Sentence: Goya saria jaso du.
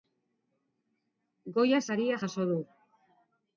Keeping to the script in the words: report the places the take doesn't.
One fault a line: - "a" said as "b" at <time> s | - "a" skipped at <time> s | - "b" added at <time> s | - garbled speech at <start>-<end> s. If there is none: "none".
none